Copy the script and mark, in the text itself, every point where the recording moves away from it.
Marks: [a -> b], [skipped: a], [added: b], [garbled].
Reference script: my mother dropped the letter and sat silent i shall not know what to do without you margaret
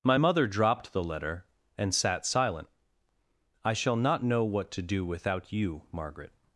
my mother dropped the letter and sat silent i shall not know what to do without you margaret